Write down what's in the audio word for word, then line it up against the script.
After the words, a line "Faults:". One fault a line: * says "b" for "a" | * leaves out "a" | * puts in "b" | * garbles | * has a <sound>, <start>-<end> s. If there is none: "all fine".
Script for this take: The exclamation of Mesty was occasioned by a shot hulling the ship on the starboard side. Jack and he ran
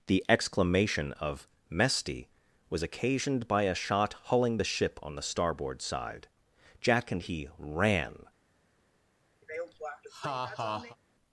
The exclamation of Mesty was occasioned by a shot hulling the ship on the starboard side. Jack and he ran
Faults:
* has a laugh, 9.4-11.0 s